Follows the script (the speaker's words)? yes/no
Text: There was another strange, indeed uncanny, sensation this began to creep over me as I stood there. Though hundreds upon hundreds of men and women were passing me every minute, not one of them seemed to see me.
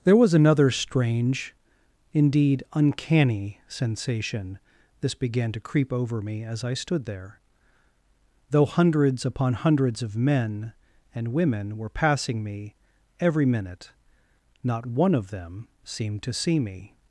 yes